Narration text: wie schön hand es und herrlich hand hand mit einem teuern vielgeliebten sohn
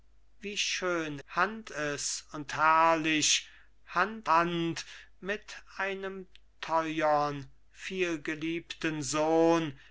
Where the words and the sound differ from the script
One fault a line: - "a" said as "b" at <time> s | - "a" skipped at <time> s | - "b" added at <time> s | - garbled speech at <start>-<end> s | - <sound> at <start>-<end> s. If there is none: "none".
none